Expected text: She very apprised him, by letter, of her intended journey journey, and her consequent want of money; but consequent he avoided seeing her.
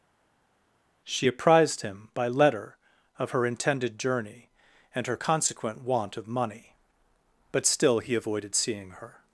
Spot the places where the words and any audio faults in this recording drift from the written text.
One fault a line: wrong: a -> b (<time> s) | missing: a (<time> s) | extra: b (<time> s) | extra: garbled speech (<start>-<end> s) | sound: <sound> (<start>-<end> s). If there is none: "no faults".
missing: very (1.3 s)
missing: journey (4.5 s)
wrong: consequent -> still (7.7 s)